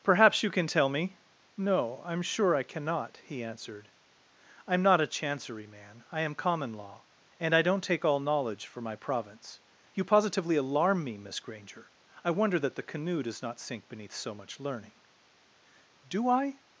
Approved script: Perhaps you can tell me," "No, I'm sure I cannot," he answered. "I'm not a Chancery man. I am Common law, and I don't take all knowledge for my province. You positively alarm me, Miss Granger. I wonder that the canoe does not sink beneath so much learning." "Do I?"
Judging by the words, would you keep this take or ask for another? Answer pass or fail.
pass